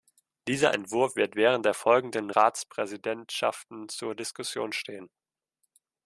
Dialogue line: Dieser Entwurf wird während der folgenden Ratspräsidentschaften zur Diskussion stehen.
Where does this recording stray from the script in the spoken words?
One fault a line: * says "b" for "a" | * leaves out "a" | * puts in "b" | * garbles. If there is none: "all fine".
all fine